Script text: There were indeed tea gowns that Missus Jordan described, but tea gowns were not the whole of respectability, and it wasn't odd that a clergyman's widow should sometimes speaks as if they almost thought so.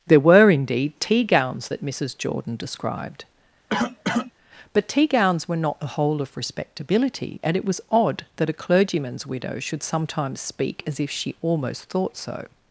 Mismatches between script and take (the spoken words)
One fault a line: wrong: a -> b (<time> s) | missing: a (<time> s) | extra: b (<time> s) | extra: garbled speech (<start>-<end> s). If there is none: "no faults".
wrong: wasn't -> was (7.6 s)
wrong: speaks -> speak (10.4 s)
wrong: they -> she (11.1 s)